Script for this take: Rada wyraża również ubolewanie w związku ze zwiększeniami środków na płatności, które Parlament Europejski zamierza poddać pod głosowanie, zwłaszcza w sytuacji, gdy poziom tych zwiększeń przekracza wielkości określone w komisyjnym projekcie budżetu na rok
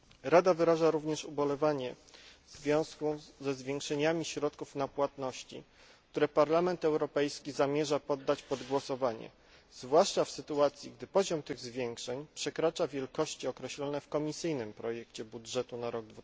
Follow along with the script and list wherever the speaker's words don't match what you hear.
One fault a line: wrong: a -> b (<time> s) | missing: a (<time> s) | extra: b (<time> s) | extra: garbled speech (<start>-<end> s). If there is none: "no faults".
no faults